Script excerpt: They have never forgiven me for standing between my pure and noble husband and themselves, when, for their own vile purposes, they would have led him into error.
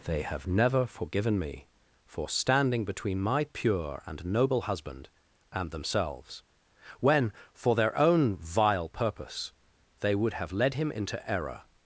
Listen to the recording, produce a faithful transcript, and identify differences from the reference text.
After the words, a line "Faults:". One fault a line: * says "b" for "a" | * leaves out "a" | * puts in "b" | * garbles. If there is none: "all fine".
They have never forgiven me for standing between my pure and noble husband and themselves, when, for their own vile purpose, they would have led him into error.
Faults:
* says "purpose" for "purposes"